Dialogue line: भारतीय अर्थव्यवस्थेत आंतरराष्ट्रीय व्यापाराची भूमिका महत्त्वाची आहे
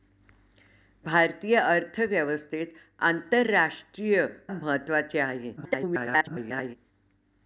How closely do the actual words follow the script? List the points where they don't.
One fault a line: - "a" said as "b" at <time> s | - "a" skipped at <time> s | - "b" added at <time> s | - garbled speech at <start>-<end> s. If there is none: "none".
- "व्यापाराची भूमिका" skipped at 4.2 s
- garbled speech at 5.6-6.8 s